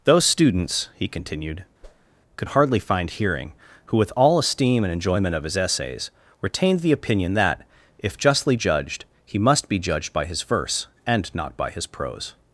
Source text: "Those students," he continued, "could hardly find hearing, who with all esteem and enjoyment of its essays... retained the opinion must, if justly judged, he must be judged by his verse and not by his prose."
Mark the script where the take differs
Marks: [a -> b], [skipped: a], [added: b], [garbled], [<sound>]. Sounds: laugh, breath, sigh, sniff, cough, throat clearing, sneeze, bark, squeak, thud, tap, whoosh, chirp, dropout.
"Those students," he continued, [whoosh] "could hardly find hearing, who with all esteem and enjoyment of [its -> his] essays... retained the opinion [must, -> that] if justly judged, he must be judged by his verse and not by his prose."